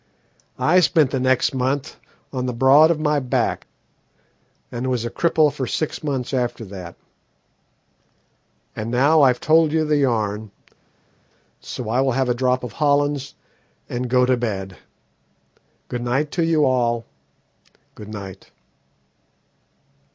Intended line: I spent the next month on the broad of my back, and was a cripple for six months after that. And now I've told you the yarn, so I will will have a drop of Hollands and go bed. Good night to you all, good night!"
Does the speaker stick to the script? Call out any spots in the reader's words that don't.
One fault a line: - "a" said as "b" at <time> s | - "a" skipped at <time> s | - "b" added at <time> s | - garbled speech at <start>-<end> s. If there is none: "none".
- "will" skipped at 12.1 s
- "to" added at 14.2 s